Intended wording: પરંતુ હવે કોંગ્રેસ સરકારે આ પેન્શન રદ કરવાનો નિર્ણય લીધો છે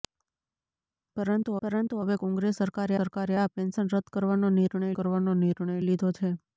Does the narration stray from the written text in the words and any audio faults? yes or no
yes